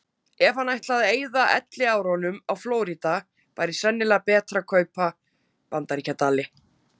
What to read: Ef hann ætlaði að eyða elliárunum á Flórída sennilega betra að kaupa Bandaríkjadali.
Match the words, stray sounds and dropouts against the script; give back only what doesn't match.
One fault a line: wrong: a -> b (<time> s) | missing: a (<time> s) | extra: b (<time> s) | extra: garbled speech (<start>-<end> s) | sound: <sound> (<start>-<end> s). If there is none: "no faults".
extra: væri (3.6 s)